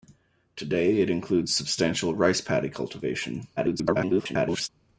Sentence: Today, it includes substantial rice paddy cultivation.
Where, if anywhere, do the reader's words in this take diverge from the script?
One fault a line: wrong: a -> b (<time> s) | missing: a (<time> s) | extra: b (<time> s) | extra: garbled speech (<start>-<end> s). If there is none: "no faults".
extra: garbled speech (3.6-4.7 s)